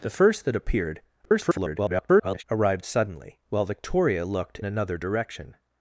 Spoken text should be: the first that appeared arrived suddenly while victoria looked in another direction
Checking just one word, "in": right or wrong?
wrong